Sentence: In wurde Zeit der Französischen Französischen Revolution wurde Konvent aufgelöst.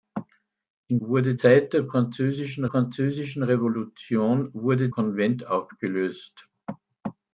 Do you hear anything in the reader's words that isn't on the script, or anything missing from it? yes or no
no